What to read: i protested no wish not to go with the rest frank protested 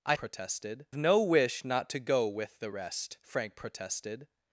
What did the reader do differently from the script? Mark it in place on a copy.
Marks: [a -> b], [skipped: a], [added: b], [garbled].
i protested no wish not to go with the rest frank protested